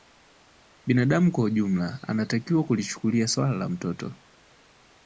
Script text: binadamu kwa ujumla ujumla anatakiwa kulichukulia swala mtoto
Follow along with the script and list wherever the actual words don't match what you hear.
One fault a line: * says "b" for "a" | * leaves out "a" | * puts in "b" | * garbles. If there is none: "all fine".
* leaves out "ujumla"
* puts in "la"